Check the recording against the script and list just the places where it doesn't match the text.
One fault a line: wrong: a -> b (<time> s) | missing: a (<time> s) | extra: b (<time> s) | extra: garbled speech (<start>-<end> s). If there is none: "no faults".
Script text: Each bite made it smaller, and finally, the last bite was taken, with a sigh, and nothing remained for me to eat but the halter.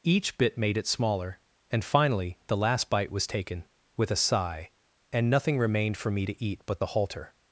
wrong: bite -> bit (0.4 s)